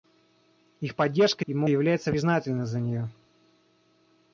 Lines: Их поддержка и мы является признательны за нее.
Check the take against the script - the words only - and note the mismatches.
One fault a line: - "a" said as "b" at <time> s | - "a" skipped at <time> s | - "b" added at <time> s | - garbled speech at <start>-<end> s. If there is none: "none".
none